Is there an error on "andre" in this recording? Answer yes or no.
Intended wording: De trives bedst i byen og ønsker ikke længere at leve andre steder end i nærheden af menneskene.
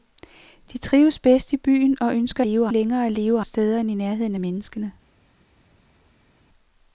yes